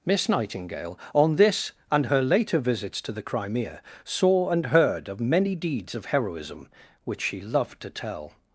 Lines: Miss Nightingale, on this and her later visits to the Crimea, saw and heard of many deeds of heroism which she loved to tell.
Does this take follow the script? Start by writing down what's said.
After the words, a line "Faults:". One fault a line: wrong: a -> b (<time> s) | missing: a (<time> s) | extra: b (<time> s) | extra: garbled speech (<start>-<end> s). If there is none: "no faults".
Miss Nightingale, on this and her later visits to the Crimea, saw and heard of many deeds of heroism which she loved to tell.
Faults:
no faults